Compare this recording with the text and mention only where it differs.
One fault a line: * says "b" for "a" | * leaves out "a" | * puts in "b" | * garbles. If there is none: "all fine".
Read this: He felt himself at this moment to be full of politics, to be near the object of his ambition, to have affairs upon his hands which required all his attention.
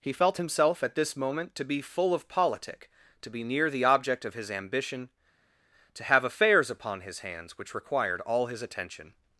* says "politic" for "politics"